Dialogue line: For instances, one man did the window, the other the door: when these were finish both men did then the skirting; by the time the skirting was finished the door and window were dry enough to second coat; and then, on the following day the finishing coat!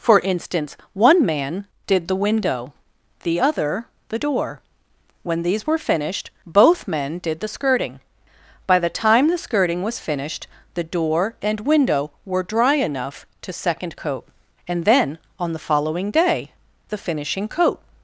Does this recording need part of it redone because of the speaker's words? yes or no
yes